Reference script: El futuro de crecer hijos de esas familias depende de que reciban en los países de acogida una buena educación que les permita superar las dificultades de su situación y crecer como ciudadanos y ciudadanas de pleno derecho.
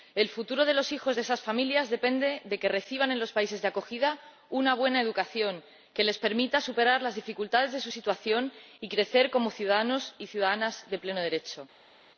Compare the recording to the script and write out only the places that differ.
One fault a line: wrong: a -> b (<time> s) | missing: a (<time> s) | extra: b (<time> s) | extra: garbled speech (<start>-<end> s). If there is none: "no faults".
wrong: crecer -> los (0.7 s)